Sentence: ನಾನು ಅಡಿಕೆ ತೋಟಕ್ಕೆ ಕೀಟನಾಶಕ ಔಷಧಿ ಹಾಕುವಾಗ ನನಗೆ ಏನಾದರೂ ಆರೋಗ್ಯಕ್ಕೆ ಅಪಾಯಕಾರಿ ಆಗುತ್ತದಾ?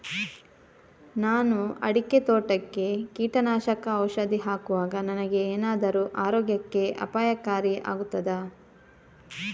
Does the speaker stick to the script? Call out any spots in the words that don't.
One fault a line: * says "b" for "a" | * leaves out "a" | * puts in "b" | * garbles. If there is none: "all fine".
all fine